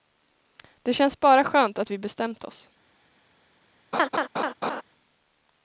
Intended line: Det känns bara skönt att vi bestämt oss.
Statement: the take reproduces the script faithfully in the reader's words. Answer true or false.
true